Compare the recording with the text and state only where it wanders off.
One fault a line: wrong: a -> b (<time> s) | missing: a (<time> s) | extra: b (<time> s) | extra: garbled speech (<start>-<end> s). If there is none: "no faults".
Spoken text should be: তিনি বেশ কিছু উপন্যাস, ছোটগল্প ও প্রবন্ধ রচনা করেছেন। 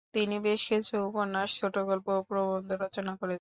no faults